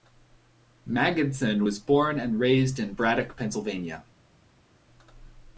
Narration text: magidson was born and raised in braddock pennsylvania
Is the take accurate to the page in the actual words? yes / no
yes